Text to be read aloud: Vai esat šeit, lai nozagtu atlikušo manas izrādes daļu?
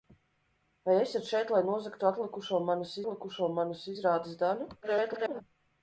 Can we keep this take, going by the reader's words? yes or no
no